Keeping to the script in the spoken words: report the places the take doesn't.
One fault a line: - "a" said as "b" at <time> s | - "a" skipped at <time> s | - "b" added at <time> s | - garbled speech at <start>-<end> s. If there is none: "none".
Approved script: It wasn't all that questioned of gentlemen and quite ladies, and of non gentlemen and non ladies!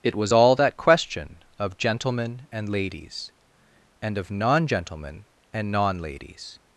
- "wasn't" said as "was" at 0.1 s
- "questioned" said as "question" at 0.8 s
- "quite" skipped at 2.7 s